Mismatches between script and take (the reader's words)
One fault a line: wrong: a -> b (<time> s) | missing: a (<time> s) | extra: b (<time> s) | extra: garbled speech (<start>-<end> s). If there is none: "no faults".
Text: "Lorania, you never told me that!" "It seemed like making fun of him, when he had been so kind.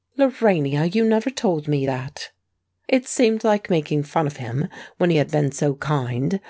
no faults